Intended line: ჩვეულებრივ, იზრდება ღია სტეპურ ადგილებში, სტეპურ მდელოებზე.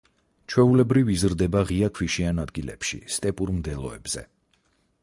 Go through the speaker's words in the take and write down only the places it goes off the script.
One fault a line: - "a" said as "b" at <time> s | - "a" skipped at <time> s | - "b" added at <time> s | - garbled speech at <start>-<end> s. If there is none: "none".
- "სტეპურ" said as "ქვიშიან" at 2.0 s